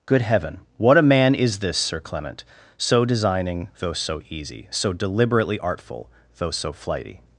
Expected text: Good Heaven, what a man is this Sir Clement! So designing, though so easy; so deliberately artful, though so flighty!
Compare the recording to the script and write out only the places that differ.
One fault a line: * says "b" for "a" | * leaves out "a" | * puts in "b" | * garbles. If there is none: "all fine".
all fine